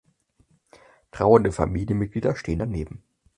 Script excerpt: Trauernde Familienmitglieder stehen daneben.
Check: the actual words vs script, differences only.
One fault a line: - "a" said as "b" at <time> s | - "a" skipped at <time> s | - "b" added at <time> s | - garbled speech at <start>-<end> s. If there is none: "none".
none